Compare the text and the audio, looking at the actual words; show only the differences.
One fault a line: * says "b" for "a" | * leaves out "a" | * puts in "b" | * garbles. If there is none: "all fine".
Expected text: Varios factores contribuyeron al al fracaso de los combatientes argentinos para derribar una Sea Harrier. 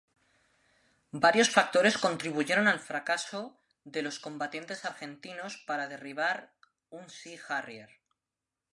* leaves out "al"
* says "un" for "una"